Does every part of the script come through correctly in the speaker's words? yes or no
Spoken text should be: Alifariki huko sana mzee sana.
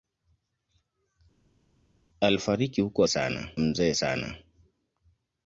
yes